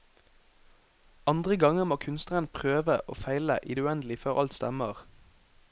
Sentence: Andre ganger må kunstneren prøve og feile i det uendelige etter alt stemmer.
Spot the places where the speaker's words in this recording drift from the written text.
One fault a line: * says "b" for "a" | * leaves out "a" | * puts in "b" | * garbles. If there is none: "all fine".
* says "før" for "etter"